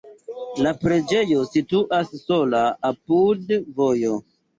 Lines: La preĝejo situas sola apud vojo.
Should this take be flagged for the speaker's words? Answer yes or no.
no